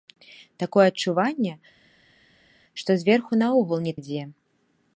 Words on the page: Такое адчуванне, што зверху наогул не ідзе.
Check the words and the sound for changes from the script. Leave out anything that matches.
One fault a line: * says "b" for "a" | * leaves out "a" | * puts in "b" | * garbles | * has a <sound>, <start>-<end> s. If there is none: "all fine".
all fine